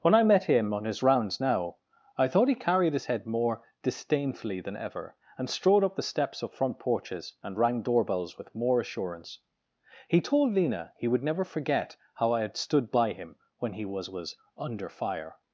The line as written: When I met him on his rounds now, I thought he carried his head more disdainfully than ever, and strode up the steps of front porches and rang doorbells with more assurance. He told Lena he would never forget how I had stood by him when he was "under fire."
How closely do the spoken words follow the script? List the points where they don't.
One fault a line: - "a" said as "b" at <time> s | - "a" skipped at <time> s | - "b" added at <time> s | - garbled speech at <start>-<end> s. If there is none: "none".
- "was" added at 14.1 s